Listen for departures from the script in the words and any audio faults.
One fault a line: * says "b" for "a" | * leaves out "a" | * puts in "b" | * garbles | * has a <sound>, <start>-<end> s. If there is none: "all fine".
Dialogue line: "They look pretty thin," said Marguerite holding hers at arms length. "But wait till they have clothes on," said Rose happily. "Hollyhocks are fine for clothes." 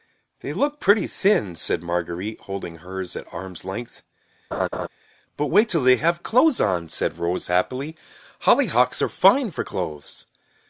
* has a laugh, 4.5-4.9 s